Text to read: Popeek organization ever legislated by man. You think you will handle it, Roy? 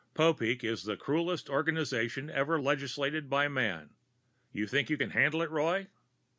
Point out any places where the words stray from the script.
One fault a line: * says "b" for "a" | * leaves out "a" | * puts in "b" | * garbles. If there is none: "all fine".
* puts in "is the cruelest"
* says "can" for "will"